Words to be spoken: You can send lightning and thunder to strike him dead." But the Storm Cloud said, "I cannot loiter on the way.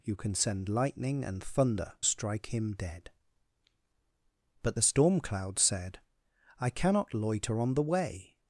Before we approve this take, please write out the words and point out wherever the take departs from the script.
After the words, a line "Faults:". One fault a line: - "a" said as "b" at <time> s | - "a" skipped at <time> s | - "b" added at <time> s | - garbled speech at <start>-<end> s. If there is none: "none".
You can send lightning and thunder strike him dead." But the Storm Cloud said, "I cannot loiter on the way.
Faults:
- "to" skipped at 1.9 s